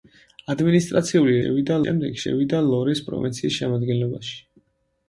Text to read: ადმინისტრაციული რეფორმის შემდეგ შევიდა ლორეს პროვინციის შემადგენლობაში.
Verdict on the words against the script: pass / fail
fail